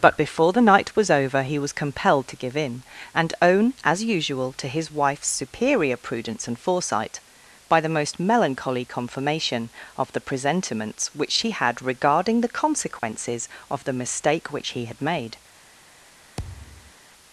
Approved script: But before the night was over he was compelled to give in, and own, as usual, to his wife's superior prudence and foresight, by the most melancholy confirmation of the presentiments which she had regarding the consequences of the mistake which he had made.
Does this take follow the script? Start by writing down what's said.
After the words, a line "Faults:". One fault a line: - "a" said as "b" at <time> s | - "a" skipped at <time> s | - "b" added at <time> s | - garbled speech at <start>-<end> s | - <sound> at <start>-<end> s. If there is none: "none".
But before the night was over he was compelled to give in, and own, as usual, to his wife's superior prudence and foresight, by the most melancholy confirmation of the presentiments which she had regarding the consequences of the mistake which he had made.
Faults:
- dropout at 13.0-13.0 s
- thud at 16.4-16.9 s